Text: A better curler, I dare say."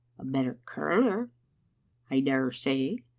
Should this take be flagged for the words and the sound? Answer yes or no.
no